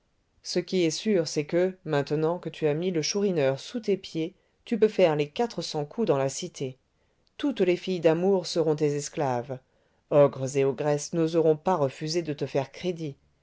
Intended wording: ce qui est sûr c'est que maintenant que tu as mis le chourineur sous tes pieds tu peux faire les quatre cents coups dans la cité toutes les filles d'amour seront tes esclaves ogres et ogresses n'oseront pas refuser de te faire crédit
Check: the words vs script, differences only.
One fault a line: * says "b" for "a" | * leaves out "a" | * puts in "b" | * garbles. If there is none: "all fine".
all fine